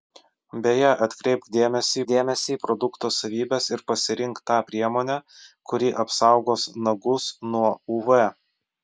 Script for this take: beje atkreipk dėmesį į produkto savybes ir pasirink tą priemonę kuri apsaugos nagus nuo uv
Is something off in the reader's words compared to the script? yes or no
yes